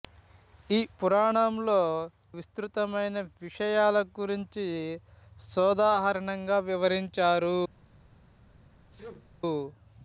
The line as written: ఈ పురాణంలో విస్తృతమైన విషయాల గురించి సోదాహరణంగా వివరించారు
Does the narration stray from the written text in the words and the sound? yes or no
yes